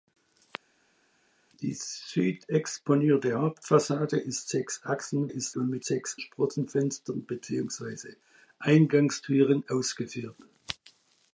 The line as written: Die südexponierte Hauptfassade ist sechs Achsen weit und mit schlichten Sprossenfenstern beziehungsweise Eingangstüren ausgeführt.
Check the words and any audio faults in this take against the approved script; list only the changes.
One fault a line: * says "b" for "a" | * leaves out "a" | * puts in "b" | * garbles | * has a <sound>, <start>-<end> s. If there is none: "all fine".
* says "ist" for "weit"
* says "sechs" for "schlichten"